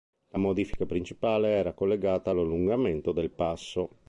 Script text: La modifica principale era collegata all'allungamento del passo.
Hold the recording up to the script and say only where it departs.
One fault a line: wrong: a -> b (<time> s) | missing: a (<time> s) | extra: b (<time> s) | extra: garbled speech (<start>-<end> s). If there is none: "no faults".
no faults